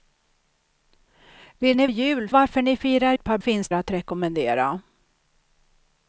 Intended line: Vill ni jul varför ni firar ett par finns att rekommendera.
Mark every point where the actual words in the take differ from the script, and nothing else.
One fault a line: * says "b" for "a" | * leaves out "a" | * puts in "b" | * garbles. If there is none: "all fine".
all fine